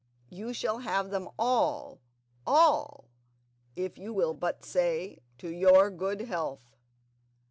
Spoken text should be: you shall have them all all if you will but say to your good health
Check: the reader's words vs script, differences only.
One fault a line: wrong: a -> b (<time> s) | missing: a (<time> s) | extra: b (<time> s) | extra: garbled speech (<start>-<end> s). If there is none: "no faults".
no faults